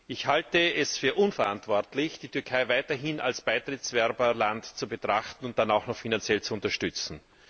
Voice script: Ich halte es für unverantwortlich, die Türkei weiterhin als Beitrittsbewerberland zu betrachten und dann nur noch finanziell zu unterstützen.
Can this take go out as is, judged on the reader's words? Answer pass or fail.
fail